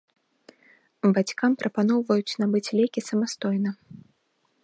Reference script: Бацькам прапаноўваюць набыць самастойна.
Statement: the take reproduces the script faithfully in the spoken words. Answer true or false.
false